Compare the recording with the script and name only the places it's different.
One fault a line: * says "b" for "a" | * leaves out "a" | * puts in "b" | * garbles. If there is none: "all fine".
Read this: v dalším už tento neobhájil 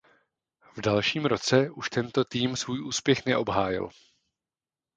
* puts in "roce"
* puts in "tým svůj úspěch"